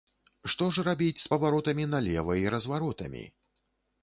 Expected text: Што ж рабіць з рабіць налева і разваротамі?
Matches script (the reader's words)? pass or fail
fail